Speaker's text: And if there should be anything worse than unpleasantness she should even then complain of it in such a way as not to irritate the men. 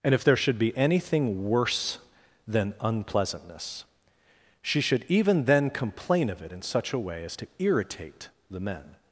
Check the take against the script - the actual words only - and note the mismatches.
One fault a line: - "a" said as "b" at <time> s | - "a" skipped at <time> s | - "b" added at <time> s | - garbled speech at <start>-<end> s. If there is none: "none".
- "not" skipped at 7.3 s